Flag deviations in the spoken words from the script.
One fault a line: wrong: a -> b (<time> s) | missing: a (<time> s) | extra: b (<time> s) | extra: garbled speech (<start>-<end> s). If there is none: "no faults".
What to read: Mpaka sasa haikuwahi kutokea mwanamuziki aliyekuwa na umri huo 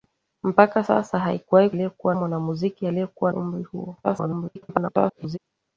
wrong: kutokea -> aliyekuwa (1.7 s)
missing: na (3.3 s)
extra: garbled speech (4.0-5.4 s)